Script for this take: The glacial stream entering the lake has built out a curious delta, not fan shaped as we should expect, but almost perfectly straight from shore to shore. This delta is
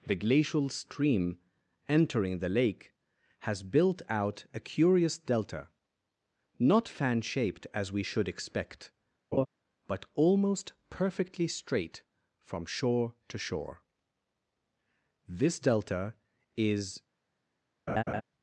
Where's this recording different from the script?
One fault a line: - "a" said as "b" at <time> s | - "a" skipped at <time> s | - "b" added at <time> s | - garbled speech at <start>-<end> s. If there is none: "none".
none